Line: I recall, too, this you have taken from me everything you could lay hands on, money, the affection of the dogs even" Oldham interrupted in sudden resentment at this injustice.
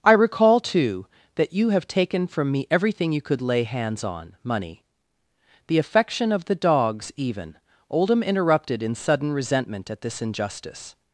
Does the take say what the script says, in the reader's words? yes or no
no